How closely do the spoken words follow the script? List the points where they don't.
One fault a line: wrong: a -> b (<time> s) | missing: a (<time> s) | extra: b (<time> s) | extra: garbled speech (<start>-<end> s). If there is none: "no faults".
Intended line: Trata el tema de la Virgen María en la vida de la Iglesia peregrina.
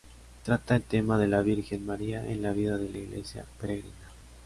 no faults